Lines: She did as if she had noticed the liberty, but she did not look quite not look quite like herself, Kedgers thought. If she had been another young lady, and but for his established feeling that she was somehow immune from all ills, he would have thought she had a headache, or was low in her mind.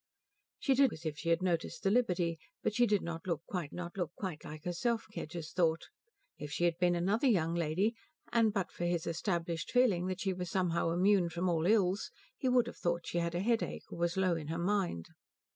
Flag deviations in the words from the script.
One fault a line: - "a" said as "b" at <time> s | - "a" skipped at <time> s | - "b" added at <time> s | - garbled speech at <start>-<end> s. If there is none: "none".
none